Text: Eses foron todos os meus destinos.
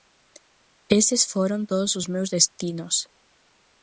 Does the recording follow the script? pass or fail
pass